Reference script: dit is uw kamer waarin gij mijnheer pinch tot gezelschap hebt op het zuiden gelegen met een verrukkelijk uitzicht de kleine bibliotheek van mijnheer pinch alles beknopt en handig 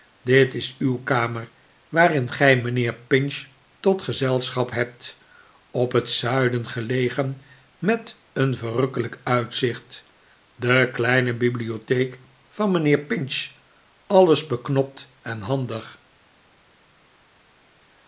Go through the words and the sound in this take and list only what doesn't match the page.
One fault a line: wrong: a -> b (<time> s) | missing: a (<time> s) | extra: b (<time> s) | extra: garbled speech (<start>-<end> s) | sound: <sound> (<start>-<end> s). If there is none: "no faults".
no faults